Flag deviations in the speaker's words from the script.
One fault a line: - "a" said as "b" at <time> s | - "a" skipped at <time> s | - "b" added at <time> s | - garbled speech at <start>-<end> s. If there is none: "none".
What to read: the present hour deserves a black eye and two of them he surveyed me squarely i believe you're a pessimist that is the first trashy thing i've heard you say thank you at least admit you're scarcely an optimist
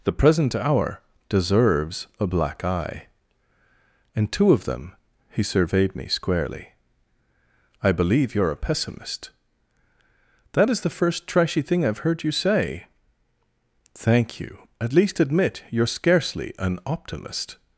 none